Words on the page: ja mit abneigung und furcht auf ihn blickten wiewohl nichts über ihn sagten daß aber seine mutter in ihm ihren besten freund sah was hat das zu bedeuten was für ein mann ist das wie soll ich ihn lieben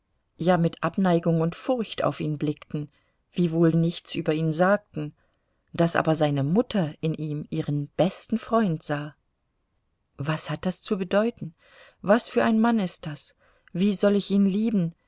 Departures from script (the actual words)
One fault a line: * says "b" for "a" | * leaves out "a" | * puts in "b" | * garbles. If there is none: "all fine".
all fine